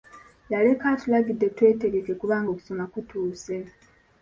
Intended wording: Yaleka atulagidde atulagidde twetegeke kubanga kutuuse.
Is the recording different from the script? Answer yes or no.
yes